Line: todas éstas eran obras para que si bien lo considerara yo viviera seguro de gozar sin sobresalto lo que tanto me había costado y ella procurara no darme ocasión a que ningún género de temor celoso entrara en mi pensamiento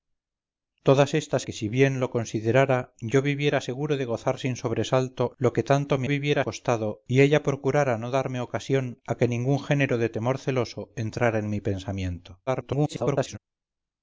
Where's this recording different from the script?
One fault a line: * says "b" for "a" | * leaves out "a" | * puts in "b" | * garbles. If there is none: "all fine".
* leaves out "eran obras para"
* says "viviera" for "había"
* garbles